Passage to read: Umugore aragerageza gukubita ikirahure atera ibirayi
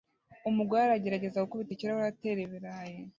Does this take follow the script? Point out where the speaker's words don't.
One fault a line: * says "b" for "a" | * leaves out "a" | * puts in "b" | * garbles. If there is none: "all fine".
all fine